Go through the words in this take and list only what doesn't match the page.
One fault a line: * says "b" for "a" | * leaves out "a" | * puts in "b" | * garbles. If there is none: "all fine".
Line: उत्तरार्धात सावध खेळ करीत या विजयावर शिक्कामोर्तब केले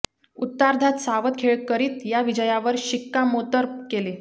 all fine